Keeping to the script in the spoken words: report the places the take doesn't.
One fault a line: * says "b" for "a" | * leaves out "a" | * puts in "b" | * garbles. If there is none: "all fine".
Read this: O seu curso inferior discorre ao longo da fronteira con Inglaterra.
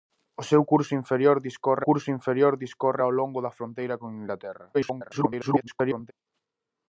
* puts in "curso inferior discorre"
* garbles